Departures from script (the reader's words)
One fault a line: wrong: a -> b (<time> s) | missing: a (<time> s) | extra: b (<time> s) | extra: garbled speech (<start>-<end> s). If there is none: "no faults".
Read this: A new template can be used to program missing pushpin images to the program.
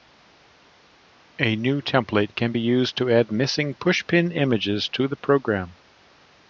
wrong: program -> add (3.1 s)